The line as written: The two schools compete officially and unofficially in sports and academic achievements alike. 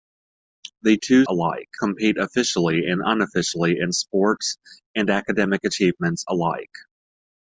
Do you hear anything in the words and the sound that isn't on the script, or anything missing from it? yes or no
yes